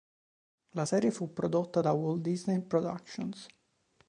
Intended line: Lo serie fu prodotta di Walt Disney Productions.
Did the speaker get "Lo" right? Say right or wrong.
wrong